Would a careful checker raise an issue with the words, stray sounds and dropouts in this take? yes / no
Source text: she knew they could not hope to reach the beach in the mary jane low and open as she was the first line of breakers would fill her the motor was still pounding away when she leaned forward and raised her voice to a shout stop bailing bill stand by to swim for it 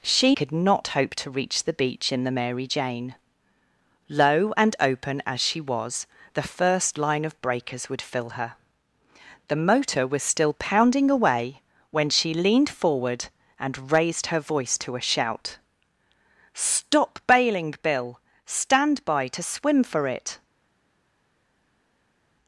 yes